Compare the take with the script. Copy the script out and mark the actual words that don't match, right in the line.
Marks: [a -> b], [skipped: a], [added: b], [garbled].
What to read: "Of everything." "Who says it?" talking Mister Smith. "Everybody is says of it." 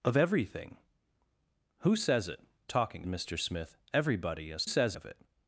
"Of everything." "Who says it?" talking Mister Smith. "Everybody is says of it."